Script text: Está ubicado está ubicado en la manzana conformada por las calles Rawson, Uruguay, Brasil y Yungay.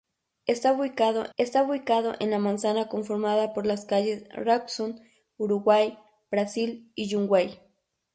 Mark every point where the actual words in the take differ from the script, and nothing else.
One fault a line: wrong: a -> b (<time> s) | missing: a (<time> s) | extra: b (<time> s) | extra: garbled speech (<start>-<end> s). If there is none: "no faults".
no faults